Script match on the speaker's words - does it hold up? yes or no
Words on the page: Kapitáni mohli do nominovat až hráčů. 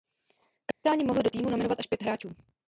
no